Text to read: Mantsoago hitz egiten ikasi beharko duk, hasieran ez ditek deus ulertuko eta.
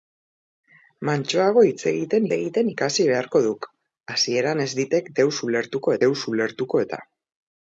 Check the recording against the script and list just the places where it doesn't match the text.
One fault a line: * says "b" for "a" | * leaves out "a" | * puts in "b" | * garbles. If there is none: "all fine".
* puts in "egiten"
* puts in "deus ulertuko"